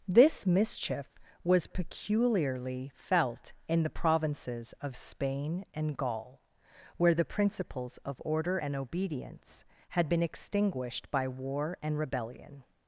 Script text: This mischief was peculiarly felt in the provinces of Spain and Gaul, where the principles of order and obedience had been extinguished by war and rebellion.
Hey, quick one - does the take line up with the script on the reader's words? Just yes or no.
yes